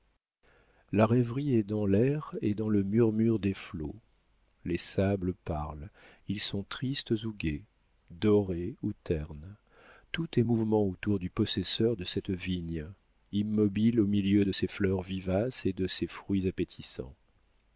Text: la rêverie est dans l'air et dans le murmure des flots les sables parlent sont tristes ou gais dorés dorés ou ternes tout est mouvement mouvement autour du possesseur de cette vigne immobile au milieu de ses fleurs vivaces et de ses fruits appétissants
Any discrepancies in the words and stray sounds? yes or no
yes